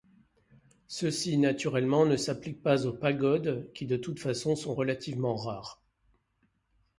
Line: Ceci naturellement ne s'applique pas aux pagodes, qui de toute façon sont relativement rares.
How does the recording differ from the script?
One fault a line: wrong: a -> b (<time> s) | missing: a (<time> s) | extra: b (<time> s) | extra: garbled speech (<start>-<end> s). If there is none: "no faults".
no faults